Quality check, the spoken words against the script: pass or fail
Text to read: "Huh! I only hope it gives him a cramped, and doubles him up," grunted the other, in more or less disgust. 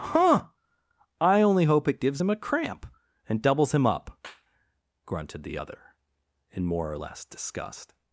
fail